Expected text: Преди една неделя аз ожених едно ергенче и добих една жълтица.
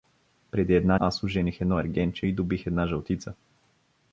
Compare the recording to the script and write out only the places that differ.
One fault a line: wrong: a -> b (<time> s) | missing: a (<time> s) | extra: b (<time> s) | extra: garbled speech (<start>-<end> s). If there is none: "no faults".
missing: неделя (1.0 s)